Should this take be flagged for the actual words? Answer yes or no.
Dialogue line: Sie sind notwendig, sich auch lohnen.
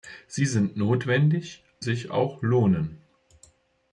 no